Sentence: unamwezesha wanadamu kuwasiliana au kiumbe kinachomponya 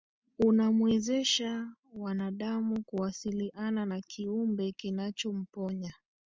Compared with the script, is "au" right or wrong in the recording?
wrong